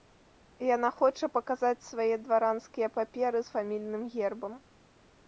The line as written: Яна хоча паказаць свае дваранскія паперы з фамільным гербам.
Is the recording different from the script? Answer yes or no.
no